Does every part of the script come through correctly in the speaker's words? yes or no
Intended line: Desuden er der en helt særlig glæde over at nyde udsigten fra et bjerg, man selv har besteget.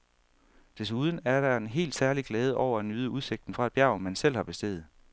yes